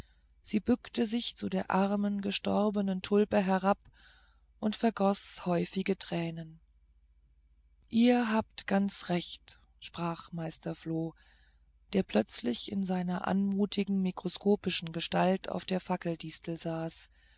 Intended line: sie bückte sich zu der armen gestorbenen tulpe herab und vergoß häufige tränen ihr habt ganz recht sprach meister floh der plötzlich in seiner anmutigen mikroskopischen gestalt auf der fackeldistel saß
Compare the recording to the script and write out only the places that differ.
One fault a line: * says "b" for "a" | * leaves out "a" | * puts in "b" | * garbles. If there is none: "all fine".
all fine